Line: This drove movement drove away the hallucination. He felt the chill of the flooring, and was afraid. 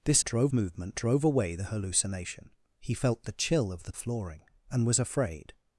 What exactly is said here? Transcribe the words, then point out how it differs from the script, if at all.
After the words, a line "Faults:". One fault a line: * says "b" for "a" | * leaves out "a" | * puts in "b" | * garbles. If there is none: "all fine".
This drove movement drove away the hallucination. He felt the chill of the flooring, and was afraid.
Faults:
all fine